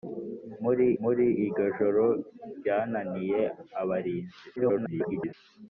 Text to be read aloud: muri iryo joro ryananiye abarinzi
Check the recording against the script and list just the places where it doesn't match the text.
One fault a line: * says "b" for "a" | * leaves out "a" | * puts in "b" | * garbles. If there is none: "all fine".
* puts in "muri"
* garbles